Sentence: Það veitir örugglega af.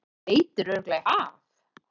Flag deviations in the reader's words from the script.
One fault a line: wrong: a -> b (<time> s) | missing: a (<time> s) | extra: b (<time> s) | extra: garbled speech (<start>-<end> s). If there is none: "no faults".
no faults